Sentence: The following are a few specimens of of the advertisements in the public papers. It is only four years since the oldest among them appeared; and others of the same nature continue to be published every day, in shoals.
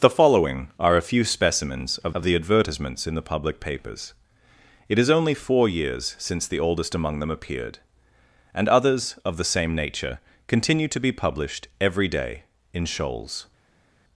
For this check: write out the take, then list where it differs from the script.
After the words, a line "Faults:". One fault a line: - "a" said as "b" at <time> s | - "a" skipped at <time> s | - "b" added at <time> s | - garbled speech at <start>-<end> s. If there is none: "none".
The following are a few specimens of of the advertisements in the public papers. It is only four years since the oldest among them appeared; and others of the same nature continue to be published every day, in shoals.
Faults:
none